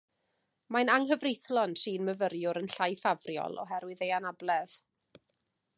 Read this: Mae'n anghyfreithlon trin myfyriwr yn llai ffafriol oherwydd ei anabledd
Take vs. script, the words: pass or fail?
pass